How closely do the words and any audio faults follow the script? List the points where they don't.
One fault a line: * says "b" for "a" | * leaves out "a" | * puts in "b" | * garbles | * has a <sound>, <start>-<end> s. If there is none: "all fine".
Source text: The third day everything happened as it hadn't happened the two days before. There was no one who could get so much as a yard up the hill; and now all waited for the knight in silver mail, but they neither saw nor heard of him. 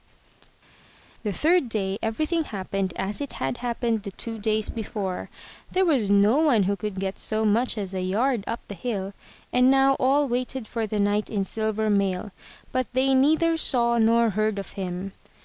* says "had" for "hadn't"